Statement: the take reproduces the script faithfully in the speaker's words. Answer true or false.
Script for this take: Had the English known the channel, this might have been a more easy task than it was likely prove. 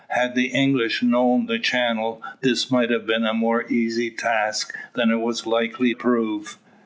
true